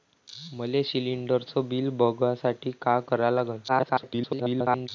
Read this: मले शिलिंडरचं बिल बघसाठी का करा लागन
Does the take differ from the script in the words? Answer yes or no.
yes